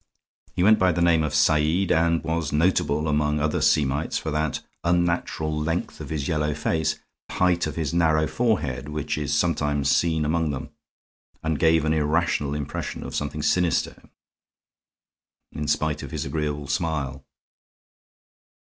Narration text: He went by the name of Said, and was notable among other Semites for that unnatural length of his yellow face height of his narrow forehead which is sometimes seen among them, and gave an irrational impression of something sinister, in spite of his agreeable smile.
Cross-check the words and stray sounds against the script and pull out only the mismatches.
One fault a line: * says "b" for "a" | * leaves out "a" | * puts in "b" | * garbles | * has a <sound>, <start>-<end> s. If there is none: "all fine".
all fine